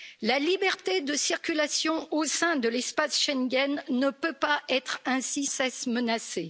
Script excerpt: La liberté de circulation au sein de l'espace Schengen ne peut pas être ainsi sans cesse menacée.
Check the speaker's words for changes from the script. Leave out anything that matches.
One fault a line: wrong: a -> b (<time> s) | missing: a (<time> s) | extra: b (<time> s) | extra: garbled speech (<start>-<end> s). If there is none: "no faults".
missing: sans (5.4 s)